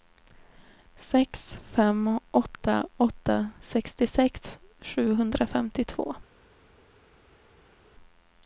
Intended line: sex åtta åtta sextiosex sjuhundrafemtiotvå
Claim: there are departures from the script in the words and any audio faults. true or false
true